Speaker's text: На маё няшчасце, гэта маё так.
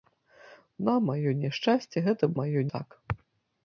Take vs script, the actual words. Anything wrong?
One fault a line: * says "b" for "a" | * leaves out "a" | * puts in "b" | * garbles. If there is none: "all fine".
all fine